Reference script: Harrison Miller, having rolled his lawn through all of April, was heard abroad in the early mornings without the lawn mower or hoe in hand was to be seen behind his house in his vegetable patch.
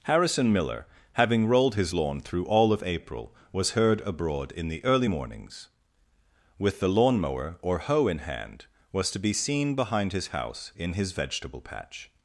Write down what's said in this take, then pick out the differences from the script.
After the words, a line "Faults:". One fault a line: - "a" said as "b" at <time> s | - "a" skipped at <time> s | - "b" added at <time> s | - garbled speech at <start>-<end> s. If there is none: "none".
Harrison Miller, having rolled his lawn through all of April, was heard abroad in the early mornings with the lawn mower or hoe in hand was to be seen behind his house in his vegetable patch.
Faults:
- "without" said as "with" at 6.6 s